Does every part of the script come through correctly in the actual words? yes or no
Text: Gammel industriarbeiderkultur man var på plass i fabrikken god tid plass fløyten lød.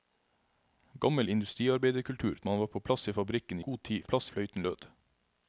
yes